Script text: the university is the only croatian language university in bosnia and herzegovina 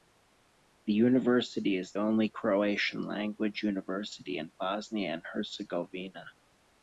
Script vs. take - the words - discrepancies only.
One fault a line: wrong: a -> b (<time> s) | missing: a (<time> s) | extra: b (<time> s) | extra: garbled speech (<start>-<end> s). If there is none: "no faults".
missing: the (1.9 s)